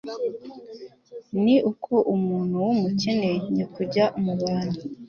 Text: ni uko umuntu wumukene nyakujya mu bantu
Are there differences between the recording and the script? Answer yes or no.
no